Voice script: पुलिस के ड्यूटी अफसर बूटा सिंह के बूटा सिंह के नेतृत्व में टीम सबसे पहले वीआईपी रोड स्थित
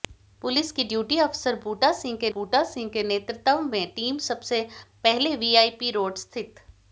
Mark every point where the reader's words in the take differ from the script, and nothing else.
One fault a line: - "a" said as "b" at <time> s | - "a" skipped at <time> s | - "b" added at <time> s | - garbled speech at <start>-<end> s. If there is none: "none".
none